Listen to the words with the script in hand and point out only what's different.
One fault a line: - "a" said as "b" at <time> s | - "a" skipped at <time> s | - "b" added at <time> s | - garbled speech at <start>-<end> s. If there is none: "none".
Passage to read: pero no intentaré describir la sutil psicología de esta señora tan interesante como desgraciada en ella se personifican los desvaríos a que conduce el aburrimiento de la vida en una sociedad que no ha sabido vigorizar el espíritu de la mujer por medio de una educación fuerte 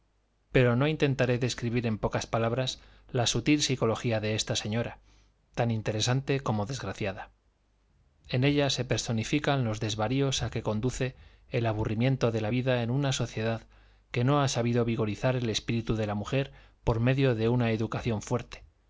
- "en pocas palabras" added at 1.9 s